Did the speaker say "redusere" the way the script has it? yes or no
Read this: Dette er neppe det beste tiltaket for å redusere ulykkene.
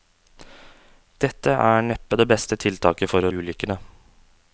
no